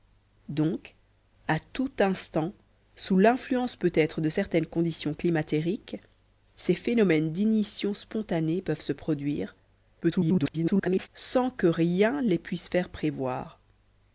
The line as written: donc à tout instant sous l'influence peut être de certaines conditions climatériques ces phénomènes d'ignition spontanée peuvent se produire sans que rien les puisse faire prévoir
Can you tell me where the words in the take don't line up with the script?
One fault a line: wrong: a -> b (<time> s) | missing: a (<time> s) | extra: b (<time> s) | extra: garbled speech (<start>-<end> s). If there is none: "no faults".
extra: garbled speech (10.0-11.1 s)